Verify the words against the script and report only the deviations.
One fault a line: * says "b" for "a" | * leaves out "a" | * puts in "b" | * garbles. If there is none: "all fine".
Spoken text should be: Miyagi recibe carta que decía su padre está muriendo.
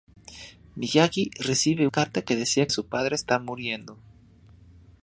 all fine